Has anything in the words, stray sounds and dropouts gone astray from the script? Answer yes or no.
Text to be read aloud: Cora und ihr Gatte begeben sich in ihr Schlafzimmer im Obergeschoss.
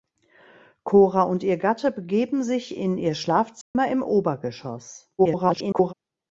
yes